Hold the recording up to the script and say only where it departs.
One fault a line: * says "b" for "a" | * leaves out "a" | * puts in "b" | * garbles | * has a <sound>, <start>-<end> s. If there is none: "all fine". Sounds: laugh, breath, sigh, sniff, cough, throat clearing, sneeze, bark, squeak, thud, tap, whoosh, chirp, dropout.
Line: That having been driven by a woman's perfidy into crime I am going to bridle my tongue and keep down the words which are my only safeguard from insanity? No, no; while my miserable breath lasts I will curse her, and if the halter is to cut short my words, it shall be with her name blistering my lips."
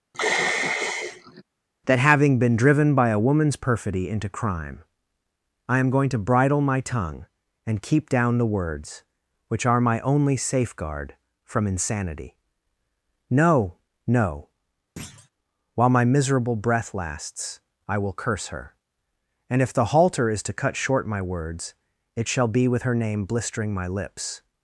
* has a sigh, 0.1-1.4 s
* has a thud, 15.0-15.3 s